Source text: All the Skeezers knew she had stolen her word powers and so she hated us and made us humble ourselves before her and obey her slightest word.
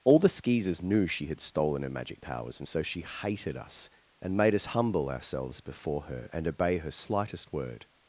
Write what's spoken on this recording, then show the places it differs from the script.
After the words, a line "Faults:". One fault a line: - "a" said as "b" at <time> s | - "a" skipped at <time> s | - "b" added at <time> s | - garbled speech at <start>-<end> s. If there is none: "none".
All the Skeezers knew she had stolen her magic powers and so she hated us and made us humble ourselves before her and obey her slightest word.
Faults:
- "word" said as "magic" at 1.9 s